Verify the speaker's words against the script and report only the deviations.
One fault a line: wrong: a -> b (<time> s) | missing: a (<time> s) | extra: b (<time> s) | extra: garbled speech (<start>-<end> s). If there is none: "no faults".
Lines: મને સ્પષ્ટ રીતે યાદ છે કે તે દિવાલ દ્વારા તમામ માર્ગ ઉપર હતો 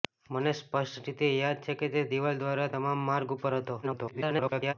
extra: garbled speech (3.8-4.7 s)